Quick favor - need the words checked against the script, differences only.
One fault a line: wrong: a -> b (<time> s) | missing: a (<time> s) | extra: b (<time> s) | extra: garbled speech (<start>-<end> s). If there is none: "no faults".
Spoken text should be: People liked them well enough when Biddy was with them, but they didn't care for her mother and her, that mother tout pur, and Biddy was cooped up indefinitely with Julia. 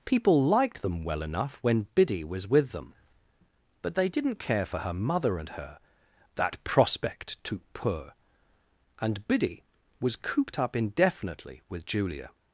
wrong: mother -> prospect (6.6 s)